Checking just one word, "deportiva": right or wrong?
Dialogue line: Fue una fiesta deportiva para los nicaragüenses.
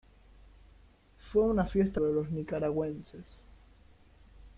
wrong